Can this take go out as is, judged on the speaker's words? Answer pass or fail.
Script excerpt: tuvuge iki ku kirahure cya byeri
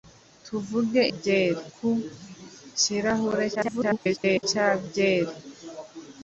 fail